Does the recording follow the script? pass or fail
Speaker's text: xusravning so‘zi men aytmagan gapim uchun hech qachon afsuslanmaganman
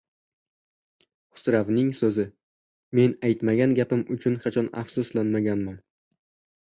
fail